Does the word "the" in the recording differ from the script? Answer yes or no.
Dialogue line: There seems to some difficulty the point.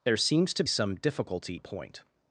no